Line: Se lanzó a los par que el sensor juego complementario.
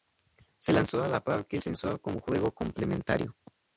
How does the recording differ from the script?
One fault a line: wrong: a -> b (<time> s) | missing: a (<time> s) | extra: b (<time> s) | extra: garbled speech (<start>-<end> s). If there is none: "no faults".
wrong: los -> la (1.1 s)
extra: como (2.0 s)